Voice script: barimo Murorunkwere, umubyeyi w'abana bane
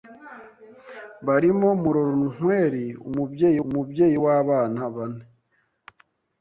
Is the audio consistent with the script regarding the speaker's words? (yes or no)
no